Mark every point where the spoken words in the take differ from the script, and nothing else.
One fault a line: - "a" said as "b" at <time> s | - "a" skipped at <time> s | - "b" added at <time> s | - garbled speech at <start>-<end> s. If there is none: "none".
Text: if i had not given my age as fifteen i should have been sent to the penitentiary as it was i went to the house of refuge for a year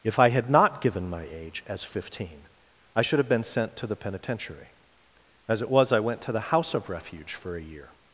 none